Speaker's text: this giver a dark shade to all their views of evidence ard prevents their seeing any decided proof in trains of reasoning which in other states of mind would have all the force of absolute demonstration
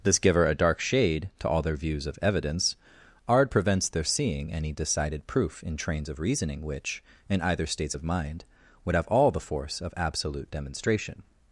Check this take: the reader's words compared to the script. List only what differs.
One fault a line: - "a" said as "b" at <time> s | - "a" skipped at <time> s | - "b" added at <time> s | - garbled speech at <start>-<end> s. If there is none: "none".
- "other" said as "either" at 7.4 s